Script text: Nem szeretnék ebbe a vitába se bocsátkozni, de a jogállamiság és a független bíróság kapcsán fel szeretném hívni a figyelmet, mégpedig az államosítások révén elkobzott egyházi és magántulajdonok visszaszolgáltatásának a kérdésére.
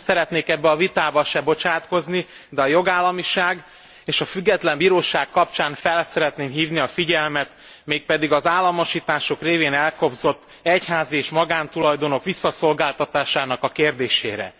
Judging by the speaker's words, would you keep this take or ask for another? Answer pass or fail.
pass